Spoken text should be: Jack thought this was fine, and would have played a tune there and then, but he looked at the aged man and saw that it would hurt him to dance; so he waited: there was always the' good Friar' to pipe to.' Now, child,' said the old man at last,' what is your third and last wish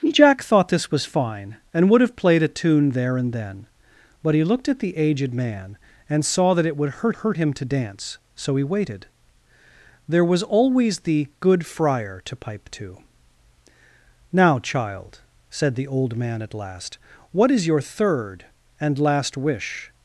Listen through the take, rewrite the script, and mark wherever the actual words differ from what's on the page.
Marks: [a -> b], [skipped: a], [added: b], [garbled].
Jack thought this was fine, and would have played a tune there and then, but he looked at the aged man and saw that it would hurt [added: hurt] him to dance; so he waited: there was always the' good Friar' to pipe to.' Now, child,' said the old man at last,' what is your third and last wish